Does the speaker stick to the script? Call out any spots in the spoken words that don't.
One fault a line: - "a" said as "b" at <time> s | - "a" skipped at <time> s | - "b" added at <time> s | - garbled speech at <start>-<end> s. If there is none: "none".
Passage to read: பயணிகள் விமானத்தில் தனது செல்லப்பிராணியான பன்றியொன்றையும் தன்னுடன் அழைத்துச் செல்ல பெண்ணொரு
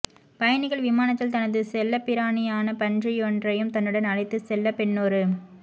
none